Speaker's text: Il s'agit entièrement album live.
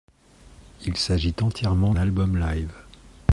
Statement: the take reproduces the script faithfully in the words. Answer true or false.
true